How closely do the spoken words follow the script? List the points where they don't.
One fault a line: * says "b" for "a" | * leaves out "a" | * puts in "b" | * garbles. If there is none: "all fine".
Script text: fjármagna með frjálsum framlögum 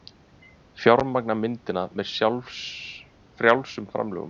* puts in "myndina"